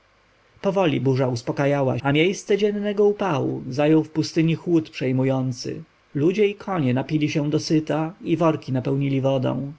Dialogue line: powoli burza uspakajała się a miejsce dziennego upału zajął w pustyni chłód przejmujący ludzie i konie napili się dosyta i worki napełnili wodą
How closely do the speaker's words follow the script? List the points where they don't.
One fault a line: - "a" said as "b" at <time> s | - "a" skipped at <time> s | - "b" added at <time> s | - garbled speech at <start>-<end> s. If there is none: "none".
- "się" skipped at 2.0 s